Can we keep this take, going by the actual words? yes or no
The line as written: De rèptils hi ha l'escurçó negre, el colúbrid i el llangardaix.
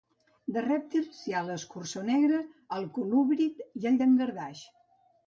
yes